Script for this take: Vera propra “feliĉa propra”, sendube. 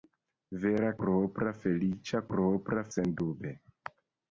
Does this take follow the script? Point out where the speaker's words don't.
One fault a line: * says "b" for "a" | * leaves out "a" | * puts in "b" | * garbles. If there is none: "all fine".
all fine